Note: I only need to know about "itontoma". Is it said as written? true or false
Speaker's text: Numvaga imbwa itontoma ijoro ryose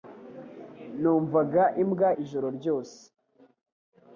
false